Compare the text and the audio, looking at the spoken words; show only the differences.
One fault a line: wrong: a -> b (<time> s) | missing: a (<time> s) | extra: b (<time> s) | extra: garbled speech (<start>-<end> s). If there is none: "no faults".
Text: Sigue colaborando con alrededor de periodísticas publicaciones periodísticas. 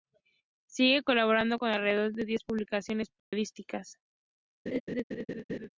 wrong: periodísticas -> diez (2.2 s)